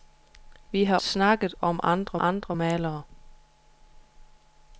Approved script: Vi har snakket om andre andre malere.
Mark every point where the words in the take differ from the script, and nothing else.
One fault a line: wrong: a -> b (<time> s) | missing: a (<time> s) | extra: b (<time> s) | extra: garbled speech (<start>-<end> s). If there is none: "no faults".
no faults